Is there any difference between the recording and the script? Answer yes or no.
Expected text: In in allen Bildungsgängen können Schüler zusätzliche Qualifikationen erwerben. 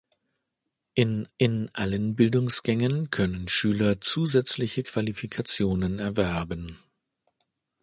no